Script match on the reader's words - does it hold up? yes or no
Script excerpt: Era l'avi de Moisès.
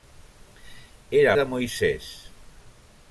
no